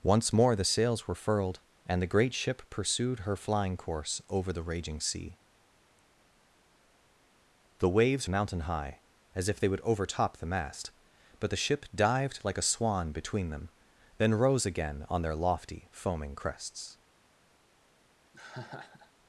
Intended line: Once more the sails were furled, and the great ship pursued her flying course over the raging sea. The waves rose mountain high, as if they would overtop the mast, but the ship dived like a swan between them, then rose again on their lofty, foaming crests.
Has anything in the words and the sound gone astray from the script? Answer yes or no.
yes